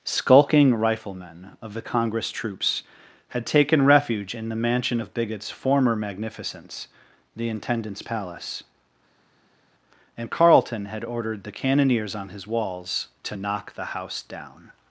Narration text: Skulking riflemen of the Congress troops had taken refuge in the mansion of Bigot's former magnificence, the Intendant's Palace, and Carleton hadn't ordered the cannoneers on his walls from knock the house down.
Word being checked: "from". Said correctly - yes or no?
no